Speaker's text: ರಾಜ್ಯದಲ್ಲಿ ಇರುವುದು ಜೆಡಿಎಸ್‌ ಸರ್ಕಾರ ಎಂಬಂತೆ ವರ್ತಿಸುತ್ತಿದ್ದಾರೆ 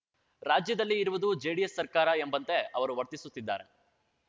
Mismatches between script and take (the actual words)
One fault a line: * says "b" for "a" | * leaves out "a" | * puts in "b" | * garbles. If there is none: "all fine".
* puts in "ಅವರು"